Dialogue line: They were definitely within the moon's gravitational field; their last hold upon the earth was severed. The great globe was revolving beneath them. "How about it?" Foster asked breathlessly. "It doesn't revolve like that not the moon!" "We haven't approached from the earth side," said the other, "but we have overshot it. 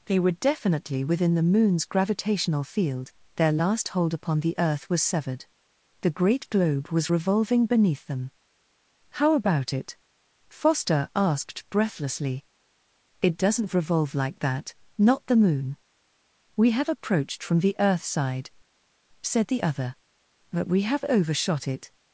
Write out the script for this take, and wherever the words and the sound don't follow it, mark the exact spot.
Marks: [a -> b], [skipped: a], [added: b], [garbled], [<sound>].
They were definitely within the moon's gravitational field; their last hold upon the earth was severed. The great globe was revolving beneath them. "How about it?" Foster asked breathlessly. "It doesn't revolve like that not the moon!" "We [haven't -> have] approached from the earth side," said the other, "but we have overshot it.